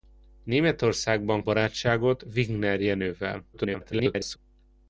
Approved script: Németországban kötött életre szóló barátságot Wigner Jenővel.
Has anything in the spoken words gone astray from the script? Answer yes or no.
yes